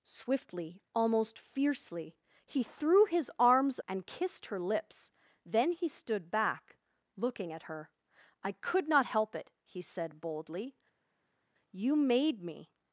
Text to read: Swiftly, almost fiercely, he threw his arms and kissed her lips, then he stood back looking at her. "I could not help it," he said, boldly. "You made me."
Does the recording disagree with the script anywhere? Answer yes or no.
no